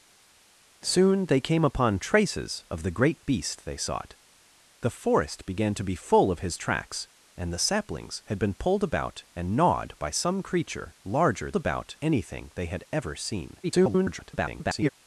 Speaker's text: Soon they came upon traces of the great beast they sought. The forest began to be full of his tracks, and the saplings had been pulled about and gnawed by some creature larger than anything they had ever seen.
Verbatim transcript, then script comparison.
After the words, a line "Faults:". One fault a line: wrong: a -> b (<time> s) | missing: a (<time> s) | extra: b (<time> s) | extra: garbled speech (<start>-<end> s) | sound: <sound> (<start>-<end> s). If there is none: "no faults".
Soon they came upon traces of the great beast they sought. The forest began to be full of his tracks, and the saplings had been pulled about and gnawed by some creature larger about anything they had ever seen. [garbled]
Faults:
wrong: than -> about (11.6 s)
extra: garbled speech (13.6-14.9 s)